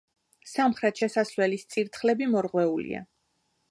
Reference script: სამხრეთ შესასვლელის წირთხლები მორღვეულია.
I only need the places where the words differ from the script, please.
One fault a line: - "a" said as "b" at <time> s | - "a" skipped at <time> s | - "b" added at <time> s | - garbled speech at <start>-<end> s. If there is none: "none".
none